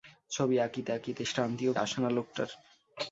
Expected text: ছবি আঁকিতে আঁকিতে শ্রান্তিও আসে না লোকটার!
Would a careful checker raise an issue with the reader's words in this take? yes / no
no